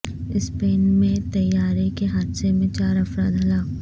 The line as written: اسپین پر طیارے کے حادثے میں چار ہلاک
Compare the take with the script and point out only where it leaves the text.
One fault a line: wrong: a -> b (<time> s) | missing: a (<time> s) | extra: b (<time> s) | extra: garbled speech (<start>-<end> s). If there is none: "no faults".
wrong: پر -> میں (0.9 s)
extra: افراد (3.0 s)